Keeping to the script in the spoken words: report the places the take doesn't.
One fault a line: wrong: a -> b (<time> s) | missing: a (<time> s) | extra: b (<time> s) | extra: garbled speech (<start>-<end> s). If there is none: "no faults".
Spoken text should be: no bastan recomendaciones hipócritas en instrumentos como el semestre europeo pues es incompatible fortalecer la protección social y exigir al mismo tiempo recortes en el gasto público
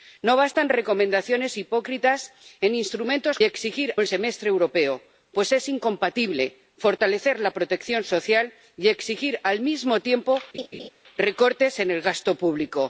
wrong: como -> exigir (3.4 s)